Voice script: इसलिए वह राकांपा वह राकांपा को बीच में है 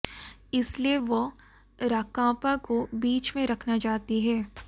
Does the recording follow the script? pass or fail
fail